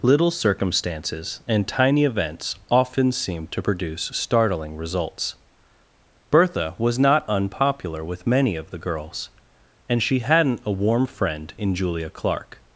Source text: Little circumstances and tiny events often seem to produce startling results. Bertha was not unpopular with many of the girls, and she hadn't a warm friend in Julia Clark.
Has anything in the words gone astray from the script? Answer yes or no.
no